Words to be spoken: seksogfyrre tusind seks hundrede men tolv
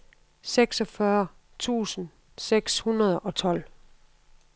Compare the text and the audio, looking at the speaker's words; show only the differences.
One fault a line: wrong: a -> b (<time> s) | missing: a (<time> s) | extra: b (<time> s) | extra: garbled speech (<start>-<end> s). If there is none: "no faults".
wrong: men -> og (3.2 s)